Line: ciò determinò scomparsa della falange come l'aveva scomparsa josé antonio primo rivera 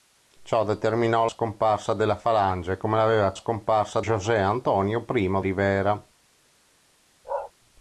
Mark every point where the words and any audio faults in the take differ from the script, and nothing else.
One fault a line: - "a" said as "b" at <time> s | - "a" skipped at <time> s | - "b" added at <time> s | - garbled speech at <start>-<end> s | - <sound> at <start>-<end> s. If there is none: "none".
- bark at 7.2-7.5 s